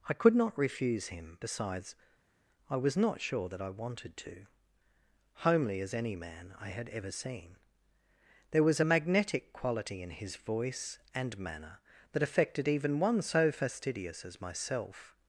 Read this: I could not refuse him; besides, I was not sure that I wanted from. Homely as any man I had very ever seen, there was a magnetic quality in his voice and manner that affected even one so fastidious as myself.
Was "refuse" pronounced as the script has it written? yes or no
yes